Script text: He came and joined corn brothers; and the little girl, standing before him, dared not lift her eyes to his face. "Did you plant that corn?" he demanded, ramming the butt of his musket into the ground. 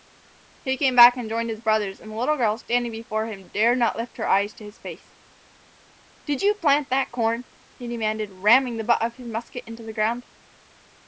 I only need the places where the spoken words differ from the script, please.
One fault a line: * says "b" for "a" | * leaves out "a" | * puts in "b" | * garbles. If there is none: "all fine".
* puts in "back"
* says "his" for "corn"